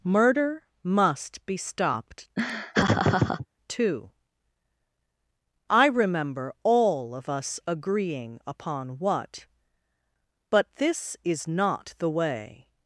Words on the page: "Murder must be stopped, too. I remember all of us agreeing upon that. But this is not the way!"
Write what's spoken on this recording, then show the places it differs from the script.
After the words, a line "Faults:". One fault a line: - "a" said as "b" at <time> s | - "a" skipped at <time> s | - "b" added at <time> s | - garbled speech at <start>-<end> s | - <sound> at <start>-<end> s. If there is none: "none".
"Murder must be stopped, too. I remember all of us agreeing upon what. But this is not the way!"
Faults:
- laugh at 2.4-3.5 s
- "that" said as "what" at 9.0 s